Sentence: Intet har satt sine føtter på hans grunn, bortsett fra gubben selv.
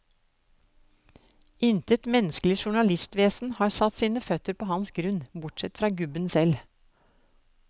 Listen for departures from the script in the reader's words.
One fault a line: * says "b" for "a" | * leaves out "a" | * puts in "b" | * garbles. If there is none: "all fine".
* puts in "menneskelig journalistvesen"